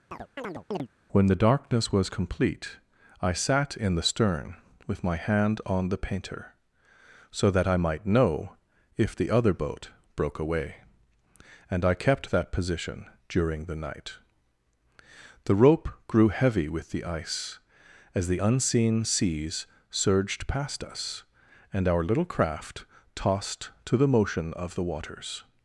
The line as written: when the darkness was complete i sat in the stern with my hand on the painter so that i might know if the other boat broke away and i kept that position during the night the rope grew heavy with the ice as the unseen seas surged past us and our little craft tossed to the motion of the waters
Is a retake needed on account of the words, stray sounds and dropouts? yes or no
yes